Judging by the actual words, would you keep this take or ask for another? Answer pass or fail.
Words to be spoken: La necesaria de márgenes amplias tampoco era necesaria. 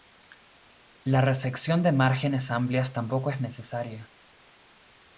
fail